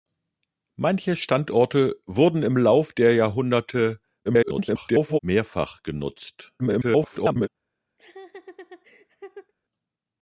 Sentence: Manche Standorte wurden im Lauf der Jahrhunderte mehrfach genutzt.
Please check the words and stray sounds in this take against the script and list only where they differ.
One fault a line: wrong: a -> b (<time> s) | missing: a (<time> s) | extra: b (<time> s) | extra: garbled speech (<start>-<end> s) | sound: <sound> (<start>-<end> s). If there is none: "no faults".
extra: garbled speech (4.3-5.2 s)
extra: garbled speech (6.6-7.5 s)
sound: laugh (8.0-9.5 s)